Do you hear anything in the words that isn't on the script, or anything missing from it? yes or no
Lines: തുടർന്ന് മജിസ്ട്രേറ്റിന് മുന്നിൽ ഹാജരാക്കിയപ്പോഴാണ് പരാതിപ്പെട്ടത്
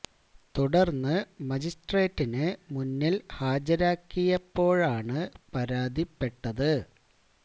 no